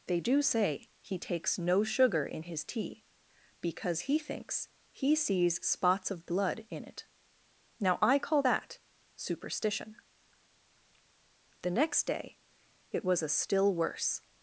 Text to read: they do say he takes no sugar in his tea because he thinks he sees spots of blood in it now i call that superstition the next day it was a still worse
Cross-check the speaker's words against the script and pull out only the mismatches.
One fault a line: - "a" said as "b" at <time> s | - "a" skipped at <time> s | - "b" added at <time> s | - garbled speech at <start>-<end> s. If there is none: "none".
none